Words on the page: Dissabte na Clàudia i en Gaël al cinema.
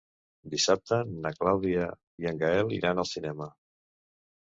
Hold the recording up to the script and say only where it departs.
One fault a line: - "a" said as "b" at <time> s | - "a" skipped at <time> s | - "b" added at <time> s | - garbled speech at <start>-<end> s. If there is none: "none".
- "iran" added at 2.8 s